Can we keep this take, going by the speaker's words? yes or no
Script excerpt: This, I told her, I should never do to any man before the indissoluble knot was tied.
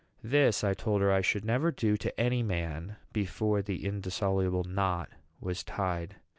yes